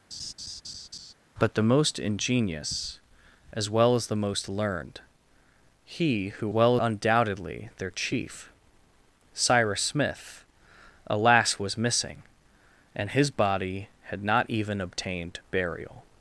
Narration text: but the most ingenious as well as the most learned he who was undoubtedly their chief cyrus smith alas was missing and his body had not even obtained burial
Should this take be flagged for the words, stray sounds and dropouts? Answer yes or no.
yes